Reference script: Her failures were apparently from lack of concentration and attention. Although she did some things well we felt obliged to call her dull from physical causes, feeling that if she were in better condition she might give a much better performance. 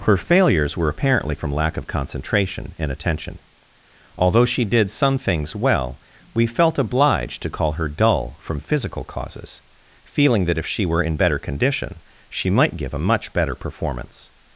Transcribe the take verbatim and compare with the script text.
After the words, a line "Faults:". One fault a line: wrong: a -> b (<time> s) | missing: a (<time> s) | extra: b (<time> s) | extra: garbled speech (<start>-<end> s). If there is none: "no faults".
Her failures were apparently from lack of concentration and attention. Although she did some things well we felt obliged to call her dull from physical causes, feeling that if she were in better condition she might give a much better performance.
Faults:
no faults